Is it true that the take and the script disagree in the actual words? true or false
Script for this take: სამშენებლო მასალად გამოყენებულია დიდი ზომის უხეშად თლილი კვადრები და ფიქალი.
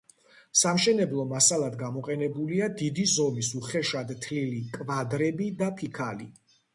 false